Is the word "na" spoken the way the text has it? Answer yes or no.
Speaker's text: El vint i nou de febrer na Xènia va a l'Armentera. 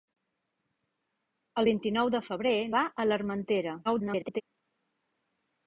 no